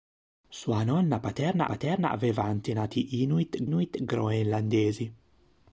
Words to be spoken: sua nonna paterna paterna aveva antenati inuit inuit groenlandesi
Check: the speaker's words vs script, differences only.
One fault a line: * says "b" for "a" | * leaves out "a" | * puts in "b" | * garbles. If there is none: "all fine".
all fine